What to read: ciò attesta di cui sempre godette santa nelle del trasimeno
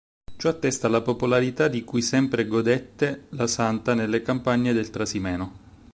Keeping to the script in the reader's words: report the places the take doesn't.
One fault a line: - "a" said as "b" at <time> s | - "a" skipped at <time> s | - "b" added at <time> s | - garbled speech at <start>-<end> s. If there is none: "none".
- "la popolarità" added at 0.9 s
- "la" added at 3.3 s
- "campagne" added at 4.2 s